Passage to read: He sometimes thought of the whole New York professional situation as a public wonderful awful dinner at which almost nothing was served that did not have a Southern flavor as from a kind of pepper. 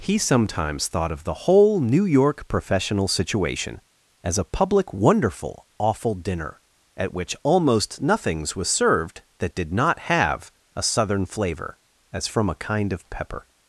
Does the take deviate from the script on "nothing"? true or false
true